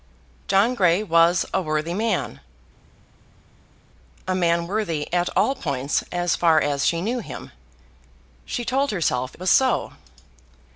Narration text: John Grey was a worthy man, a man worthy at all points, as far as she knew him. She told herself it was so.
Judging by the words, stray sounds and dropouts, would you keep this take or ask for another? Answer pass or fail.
fail